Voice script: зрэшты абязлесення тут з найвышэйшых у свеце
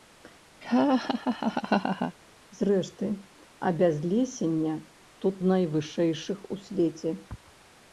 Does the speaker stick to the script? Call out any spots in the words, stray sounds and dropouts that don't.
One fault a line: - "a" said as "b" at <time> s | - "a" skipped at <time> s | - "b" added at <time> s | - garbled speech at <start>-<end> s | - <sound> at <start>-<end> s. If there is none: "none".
- laugh at 0.6-2.2 s